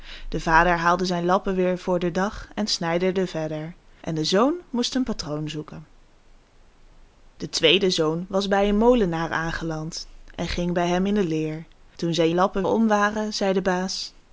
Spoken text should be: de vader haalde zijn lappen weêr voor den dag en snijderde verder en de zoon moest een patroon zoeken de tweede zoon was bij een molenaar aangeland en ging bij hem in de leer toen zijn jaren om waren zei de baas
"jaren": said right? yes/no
no